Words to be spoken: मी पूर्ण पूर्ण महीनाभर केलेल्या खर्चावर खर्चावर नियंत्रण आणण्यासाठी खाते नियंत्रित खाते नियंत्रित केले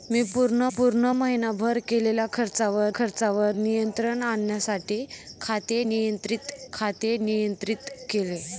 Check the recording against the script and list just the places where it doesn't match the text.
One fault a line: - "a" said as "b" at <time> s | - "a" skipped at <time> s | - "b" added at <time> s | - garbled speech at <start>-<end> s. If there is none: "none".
none